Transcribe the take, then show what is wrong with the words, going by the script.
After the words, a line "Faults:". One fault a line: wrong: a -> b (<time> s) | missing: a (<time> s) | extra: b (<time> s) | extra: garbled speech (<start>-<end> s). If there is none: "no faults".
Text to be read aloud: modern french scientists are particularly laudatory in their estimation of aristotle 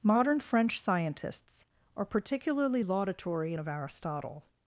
modern french scientists are particularly laudatory of aristotle
Faults:
missing: in their estimation (3.5 s)